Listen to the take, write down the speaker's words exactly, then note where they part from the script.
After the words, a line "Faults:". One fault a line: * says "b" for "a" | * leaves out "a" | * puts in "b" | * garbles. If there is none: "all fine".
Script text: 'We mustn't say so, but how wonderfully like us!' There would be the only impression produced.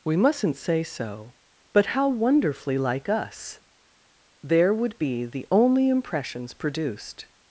'We mustn't say so, but how wonderfully like us!' There would be the only impressions produced.
Faults:
* says "impressions" for "impression"